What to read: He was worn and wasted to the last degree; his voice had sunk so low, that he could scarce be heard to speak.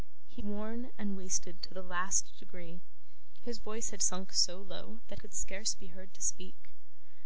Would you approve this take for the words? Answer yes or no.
no